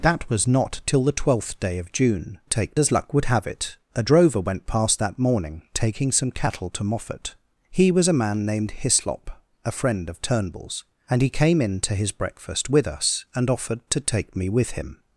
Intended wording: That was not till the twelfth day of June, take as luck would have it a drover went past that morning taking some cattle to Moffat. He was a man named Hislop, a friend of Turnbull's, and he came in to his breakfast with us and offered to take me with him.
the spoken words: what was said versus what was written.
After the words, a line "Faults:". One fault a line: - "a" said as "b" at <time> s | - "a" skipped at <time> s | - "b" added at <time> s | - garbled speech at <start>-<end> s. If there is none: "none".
That was not till the twelfth day of June, take as luck would have it a drover went past that morning taking some cattle to Moffat. He was a man named Hislop, a friend of Turnbull's, and he came in to his breakfast with us and offered to take me with him.
Faults:
none